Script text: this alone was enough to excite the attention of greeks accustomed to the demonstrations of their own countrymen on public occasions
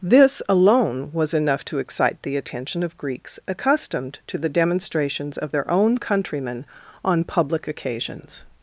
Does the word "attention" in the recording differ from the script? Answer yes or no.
no